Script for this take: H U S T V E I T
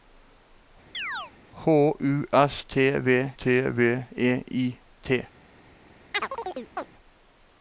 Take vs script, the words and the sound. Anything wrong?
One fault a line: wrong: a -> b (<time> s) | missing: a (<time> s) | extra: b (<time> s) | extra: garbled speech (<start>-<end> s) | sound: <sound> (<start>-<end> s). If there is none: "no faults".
sound: chirp (0.9-1.3 s)
extra: T V (3.3 s)
sound: chirp (6.1-6.9 s)